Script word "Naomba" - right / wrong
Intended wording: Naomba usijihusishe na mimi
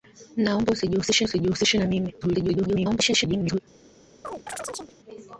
right